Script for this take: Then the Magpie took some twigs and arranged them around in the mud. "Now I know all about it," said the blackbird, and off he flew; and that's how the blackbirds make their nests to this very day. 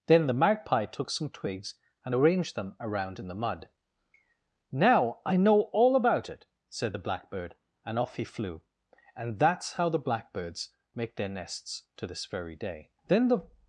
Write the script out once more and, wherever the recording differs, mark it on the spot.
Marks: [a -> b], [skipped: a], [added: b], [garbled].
Then the Magpie took some twigs and arranged them around in the mud. "Now I know all about it," said the blackbird, and off he flew; and that's how the blackbirds make their nests to this very day. [added: Then the]